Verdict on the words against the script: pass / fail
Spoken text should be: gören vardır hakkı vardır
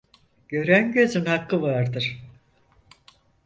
fail